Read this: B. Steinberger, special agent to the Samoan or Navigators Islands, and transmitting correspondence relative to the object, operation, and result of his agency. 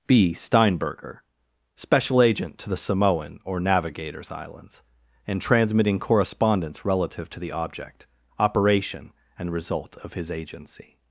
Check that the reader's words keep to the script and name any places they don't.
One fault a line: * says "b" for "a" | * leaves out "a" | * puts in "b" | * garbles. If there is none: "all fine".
all fine